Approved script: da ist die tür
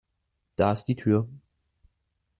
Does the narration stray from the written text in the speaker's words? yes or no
no